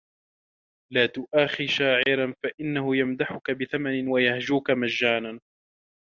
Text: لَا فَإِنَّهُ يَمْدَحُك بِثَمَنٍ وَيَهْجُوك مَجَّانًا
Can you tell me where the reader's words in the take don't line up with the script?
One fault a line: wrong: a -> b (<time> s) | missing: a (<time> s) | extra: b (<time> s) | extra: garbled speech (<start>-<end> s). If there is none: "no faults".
extra: تُؤَاخِ شَاعِرًا (1.1 s)